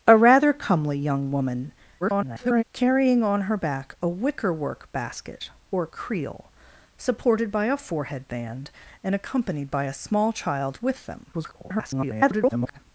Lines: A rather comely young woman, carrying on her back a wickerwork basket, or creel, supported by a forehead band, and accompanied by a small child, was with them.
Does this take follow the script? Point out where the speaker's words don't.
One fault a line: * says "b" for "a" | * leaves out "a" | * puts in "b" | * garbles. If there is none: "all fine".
* garbles
* leaves out "was"
* garbles